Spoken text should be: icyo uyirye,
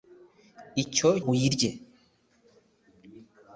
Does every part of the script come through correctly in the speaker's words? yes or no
yes